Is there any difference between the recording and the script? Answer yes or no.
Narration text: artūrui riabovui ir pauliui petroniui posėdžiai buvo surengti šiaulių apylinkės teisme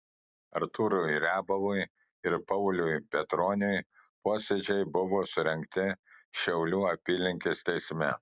no